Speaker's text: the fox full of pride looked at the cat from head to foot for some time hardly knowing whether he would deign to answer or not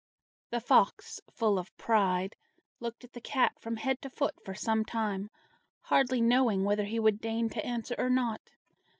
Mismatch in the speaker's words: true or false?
false